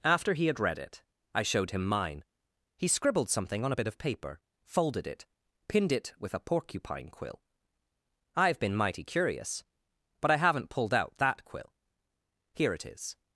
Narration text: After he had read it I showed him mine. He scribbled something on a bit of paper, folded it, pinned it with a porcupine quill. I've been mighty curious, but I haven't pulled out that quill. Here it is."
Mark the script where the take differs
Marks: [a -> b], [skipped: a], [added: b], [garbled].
After he had read it I showed him mine. He scribbled something on a bit of paper, folded it, pinned it with a porcupine quill. I've been mighty curious, but I haven't pulled out that quill. Here it is."